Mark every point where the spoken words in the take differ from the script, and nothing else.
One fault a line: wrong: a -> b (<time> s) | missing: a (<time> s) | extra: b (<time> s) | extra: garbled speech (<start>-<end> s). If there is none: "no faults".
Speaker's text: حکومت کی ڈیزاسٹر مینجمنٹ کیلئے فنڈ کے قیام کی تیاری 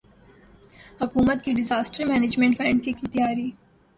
missing: کیلئے (2.6 s)
missing: قیام (2.9 s)